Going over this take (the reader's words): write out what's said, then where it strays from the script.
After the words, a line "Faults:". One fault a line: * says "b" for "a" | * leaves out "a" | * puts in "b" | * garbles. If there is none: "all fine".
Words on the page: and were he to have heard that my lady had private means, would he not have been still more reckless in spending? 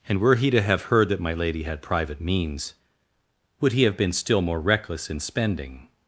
and were he to have heard that my lady had private means, would he have been still more reckless in spending?
Faults:
* leaves out "not"